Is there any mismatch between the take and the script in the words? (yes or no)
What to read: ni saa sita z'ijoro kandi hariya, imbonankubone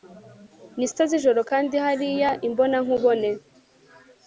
yes